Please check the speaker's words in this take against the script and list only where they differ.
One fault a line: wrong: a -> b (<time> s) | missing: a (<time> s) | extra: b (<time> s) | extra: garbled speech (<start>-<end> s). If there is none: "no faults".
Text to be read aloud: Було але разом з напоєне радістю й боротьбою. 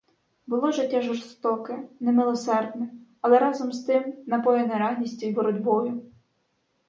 extra: життя жорстоке немилосердне (0.7 s)
extra: тим (3.8 s)